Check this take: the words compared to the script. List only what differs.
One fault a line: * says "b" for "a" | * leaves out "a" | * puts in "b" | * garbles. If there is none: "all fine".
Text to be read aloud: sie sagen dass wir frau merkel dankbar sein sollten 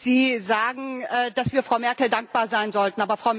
all fine